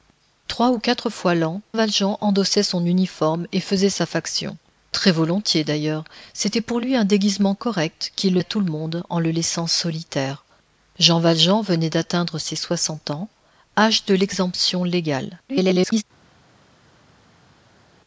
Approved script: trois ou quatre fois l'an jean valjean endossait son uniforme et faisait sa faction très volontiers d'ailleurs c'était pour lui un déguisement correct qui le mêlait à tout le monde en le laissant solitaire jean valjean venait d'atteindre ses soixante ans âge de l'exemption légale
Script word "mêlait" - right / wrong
wrong